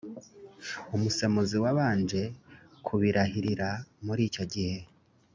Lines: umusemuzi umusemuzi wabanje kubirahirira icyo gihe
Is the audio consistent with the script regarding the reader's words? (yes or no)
no